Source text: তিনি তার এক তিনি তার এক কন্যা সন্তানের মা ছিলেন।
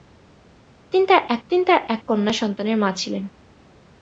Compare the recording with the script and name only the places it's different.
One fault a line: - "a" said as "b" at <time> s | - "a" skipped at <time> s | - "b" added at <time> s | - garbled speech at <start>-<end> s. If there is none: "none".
none